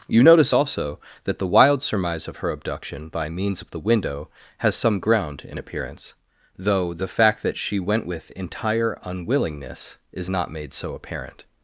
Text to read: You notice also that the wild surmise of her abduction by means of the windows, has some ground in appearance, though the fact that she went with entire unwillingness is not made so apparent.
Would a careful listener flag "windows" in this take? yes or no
yes